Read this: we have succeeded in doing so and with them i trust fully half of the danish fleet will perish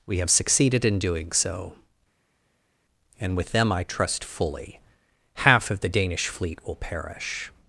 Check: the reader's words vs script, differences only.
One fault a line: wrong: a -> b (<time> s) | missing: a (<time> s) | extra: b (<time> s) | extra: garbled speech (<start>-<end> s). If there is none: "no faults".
no faults